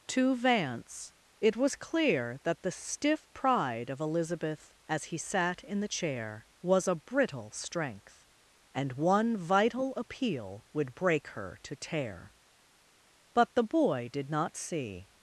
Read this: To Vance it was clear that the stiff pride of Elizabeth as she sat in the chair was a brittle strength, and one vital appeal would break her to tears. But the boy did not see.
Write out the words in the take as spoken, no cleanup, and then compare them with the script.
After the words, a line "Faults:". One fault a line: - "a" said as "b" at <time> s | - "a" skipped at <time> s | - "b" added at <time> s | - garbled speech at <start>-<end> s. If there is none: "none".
To Vance it was clear that the stiff pride of Elizabeth as he sat in the chair was a brittle strength, and one vital appeal would break her to tear. But the boy did not see.
Faults:
- "she" said as "he" at 5.0 s
- "tears" said as "tear" at 11.8 s